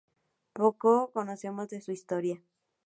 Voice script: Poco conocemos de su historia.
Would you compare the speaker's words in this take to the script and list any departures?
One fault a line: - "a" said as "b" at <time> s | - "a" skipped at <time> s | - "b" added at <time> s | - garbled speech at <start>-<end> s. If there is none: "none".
none